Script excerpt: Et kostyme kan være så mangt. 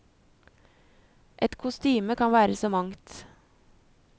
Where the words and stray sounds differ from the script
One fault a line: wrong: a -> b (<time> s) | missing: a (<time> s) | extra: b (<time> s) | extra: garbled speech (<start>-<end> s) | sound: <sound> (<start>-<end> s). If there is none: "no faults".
no faults